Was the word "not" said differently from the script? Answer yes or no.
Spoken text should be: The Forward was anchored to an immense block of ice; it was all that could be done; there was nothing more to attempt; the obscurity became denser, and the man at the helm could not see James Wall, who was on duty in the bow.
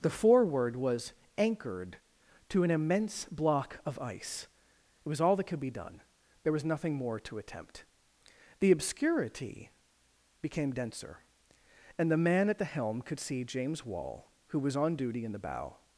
yes